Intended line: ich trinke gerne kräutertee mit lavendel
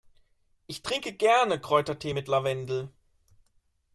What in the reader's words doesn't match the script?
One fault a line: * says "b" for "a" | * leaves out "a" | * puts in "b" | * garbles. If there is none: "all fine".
all fine